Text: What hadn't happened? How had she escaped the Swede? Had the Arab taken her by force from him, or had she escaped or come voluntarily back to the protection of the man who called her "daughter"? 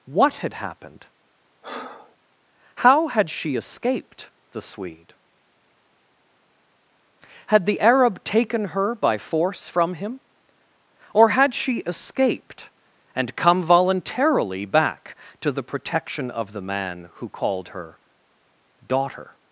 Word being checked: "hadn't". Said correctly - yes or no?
no